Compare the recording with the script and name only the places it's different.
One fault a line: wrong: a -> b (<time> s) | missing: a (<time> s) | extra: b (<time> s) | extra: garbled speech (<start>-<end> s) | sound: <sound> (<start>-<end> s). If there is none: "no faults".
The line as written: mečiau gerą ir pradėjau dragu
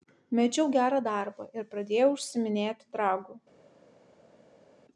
extra: darbą (1.1 s)
extra: užsiiminėti (2.2 s)